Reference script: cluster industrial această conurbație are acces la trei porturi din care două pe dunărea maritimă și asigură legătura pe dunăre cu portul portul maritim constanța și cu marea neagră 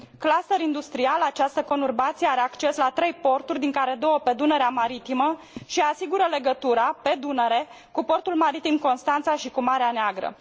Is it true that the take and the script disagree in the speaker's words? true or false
true